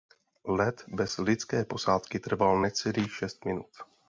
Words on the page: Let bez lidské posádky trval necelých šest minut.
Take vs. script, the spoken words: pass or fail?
pass